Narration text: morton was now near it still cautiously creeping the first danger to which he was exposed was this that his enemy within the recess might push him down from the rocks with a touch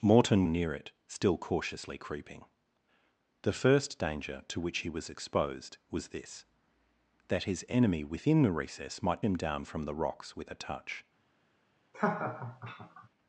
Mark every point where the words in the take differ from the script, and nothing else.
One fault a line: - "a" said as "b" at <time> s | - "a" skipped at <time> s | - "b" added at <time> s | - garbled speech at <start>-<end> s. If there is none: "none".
- "was now" skipped at 0.5 s
- "push" skipped at 9.2 s